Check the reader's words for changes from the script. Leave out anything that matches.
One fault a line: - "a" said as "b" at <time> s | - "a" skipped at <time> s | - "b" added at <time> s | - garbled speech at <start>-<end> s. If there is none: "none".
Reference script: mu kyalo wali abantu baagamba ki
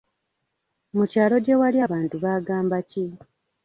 - "gye" added at 1.4 s